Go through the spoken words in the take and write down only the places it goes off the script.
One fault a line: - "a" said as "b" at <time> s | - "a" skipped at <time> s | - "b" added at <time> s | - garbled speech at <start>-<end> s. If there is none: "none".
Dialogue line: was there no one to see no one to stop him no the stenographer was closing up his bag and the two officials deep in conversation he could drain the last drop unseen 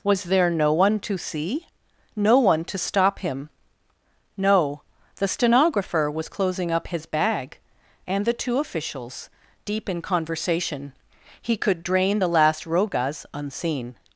- "drop" said as "rogas" at 12.6 s